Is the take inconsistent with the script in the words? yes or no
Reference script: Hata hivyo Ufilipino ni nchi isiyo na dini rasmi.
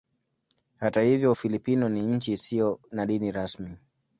no